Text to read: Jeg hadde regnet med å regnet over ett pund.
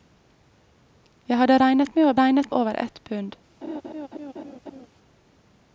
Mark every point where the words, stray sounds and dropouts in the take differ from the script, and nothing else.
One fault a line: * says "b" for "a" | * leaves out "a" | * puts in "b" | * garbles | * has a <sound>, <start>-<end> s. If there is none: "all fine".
* has a laugh, 3.6-4.9 s